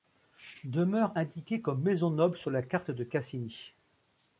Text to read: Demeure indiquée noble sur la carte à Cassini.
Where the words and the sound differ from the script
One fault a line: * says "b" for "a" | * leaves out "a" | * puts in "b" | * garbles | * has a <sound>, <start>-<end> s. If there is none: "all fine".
* puts in "comme maison"
* says "de" for "à"